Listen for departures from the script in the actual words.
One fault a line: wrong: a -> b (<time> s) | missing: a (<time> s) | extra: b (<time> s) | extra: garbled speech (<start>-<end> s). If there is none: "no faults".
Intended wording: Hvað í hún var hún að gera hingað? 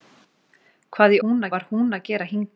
no faults